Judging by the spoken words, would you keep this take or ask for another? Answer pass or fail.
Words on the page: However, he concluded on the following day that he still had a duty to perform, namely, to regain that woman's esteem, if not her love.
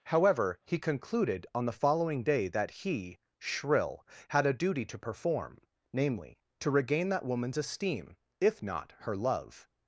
fail